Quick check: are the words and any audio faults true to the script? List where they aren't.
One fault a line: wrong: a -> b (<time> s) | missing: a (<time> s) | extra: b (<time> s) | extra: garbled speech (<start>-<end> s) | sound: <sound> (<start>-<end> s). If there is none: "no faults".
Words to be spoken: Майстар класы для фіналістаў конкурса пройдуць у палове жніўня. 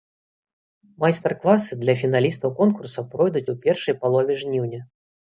extra: першай (3.7 s)